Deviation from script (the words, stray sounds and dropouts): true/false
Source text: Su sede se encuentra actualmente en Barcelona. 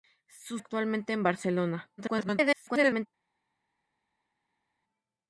true